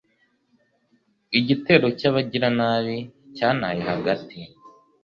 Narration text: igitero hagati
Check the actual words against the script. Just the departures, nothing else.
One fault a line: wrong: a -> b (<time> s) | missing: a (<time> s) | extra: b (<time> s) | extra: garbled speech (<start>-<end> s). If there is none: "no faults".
extra: cy'abagiranabi cyantaye (2.0 s)